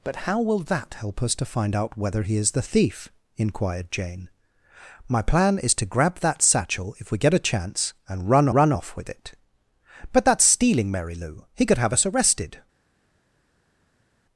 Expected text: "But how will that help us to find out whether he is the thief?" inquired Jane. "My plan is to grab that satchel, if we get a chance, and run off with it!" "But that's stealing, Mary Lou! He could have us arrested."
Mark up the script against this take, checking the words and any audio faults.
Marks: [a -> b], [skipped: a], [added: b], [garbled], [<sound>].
"But how will that help us to find out whether he is the thief?" inquired Jane. "My plan is to grab that satchel, if we get a chance, and run [added: run] off with it!" "But that's stealing, Mary Lou! He could have us arrested."